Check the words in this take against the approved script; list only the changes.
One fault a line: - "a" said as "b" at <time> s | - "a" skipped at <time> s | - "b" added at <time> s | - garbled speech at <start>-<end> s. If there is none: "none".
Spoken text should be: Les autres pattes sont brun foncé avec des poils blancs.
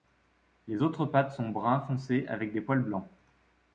none